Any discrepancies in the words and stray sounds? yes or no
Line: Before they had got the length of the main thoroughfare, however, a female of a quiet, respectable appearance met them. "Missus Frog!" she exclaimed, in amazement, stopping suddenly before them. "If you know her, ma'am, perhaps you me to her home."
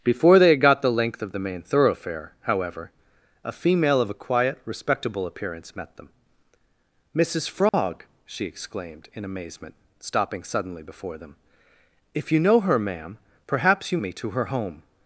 yes